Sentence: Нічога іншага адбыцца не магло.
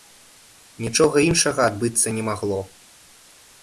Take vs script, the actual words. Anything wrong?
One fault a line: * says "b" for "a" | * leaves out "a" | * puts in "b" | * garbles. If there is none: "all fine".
all fine